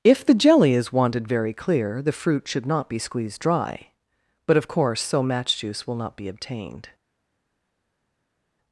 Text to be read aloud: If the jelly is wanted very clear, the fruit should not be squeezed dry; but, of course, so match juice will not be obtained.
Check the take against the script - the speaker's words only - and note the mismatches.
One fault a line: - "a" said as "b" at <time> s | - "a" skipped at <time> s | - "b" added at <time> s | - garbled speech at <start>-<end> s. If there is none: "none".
none